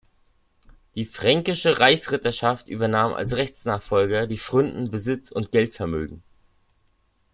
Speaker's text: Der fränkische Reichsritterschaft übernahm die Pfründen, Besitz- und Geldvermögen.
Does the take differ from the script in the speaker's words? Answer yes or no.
yes